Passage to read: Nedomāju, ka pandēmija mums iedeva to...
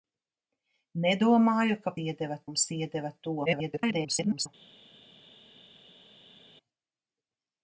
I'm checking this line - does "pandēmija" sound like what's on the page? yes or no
no